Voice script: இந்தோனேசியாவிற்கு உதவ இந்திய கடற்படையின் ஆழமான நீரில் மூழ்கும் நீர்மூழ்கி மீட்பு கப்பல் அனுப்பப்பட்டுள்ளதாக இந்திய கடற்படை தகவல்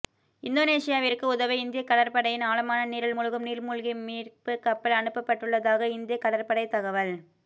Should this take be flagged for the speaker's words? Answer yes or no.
no